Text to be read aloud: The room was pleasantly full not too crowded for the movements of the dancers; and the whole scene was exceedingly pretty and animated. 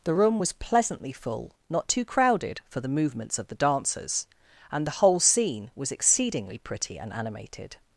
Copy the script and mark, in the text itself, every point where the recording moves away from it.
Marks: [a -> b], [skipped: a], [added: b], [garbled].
The room was pleasantly full not too crowded for the movements of the dancers; and the whole scene was exceedingly pretty and animated.